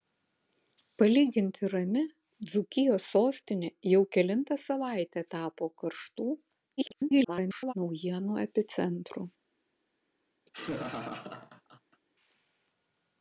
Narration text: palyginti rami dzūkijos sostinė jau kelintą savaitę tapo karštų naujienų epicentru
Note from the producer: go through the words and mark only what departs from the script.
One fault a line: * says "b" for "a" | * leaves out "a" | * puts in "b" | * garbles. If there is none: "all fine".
* garbles